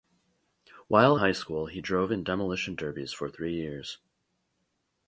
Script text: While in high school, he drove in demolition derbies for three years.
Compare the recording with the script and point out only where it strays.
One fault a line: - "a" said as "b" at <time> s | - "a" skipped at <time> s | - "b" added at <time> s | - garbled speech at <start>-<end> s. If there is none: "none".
- "in" skipped at 1.2 s